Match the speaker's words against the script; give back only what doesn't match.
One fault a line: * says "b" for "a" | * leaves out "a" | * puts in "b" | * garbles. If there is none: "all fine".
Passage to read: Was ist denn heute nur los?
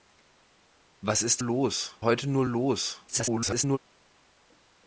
* says "los" for "denn"
* garbles